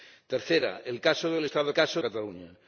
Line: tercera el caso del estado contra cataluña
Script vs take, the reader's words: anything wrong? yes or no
yes